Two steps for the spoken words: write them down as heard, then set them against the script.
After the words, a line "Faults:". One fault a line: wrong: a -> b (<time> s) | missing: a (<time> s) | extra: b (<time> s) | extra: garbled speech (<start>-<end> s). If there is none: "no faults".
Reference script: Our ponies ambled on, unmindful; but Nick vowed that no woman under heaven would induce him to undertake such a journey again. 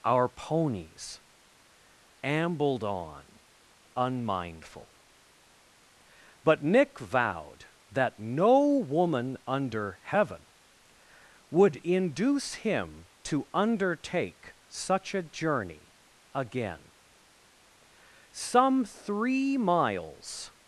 Our ponies ambled on, unmindful; but Nick vowed that no woman under heaven would induce him to undertake such a journey again. Some three miles
Faults:
extra: Some three miles (18.3 s)